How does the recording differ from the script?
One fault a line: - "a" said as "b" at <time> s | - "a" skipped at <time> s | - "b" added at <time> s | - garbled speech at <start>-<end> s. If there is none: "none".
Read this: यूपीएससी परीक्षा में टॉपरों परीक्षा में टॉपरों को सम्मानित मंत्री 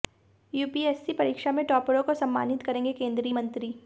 - "परीक्षा में टॉपरों को सम्मानित" said as "को सम्मानित करेंगे केंद्रीय" at 2.0 s